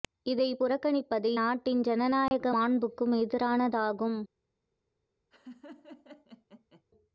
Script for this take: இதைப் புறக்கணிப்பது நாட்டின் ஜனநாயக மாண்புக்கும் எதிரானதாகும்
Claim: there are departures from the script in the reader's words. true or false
false